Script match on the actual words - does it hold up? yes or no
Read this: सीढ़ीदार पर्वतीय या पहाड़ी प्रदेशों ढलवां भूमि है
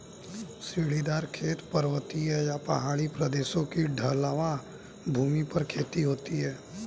no